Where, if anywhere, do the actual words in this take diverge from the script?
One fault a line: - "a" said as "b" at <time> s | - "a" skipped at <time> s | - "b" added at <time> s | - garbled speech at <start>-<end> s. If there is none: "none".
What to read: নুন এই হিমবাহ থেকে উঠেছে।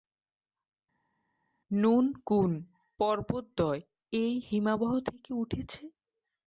- "কুন পর্বতদ্বয়" added at 2.2 s